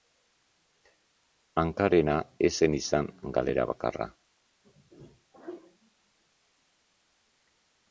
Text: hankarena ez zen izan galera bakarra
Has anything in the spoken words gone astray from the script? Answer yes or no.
no